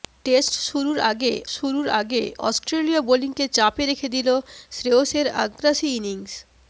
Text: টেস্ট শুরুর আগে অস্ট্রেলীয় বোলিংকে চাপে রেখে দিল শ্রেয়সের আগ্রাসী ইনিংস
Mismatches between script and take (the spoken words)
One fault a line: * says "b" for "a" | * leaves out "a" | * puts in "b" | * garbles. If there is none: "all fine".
* puts in "শুরুর আগে"